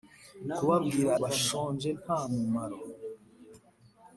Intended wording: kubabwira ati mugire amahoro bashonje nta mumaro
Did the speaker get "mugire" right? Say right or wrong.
wrong